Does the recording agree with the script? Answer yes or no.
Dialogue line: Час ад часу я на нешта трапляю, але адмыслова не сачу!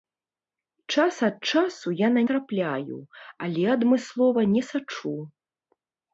no